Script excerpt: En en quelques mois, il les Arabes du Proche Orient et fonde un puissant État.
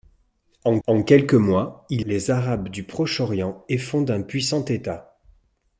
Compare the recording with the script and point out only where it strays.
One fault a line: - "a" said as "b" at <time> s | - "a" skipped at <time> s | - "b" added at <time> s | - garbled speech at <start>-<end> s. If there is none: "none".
none